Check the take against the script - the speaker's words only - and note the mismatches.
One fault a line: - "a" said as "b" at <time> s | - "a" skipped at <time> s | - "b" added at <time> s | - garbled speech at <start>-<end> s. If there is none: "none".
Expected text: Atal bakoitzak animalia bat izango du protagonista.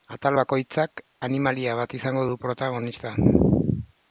none